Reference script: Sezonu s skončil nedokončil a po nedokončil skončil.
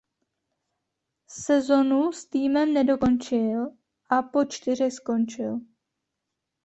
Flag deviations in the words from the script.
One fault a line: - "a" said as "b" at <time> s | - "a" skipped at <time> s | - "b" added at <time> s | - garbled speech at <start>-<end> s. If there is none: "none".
- "skončil" said as "týmem" at 2.2 s
- "nedokončil" said as "čtyřech" at 4.5 s